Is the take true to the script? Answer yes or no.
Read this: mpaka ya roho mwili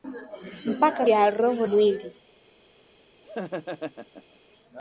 yes